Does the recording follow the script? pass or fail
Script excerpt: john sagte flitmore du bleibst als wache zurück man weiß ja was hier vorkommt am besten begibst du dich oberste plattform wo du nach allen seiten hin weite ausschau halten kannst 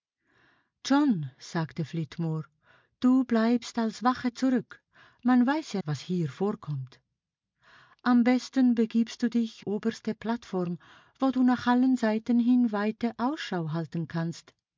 pass